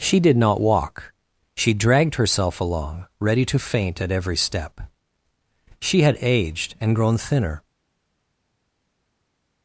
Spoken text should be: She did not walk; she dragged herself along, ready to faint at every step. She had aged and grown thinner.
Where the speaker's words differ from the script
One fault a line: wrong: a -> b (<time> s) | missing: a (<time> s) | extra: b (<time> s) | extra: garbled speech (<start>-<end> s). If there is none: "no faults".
no faults